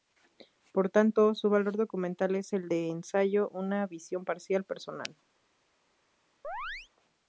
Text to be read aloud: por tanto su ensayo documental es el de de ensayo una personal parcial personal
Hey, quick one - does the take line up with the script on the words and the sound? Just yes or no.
no